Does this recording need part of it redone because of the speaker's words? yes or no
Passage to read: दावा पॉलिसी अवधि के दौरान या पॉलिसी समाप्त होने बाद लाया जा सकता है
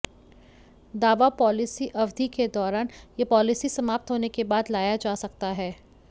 yes